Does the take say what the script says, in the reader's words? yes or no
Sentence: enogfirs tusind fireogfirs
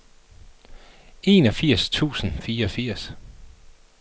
yes